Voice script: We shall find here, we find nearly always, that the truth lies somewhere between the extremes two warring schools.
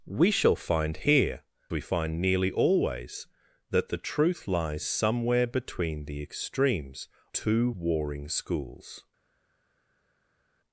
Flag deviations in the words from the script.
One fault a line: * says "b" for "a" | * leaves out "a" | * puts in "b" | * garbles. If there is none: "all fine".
all fine